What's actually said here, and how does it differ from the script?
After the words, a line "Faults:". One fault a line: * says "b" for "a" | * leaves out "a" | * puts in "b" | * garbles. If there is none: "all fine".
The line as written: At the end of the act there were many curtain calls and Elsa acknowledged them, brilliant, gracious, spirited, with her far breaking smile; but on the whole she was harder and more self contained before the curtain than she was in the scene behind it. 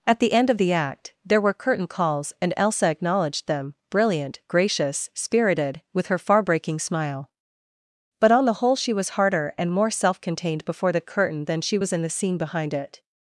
At the end of the act there were curtain calls and Elsa acknowledged them, brilliant, gracious, spirited, with her far breaking smile; but on the whole she was harder and more self contained before the curtain than she was in the scene behind it.
Faults:
* leaves out "many"